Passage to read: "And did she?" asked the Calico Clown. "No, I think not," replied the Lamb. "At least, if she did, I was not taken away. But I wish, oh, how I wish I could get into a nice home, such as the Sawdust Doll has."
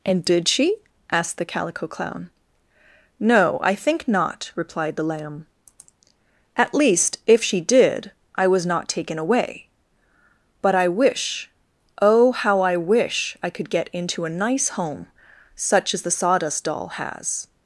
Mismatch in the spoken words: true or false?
false